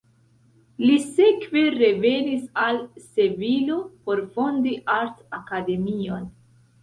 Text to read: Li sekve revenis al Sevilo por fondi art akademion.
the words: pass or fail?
pass